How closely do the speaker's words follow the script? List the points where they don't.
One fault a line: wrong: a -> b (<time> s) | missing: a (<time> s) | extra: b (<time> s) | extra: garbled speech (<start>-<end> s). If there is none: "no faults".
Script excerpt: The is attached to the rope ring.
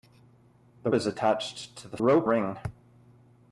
no faults